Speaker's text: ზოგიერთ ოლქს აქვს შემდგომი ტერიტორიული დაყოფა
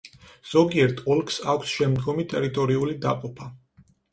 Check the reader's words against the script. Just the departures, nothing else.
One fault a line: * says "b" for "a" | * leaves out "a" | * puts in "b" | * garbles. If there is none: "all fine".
all fine